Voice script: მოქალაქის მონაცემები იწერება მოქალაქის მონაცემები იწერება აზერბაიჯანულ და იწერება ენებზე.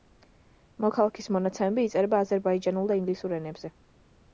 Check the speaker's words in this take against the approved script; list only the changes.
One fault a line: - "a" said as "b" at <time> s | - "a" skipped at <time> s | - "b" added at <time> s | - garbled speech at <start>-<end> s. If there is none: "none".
- "მოქალაქის მონაცემები იწერება" skipped at 2.2 s
- "იწერება" said as "ინგლისურ" at 3.0 s